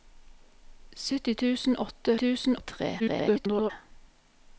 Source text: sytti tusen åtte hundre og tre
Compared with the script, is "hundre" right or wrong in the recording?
wrong